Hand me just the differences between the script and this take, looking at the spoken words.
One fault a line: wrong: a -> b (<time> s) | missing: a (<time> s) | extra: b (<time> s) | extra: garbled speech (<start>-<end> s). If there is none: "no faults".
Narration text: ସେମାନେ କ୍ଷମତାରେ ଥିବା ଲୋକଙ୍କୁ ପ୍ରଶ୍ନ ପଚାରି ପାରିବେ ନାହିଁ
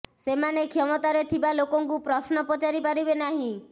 no faults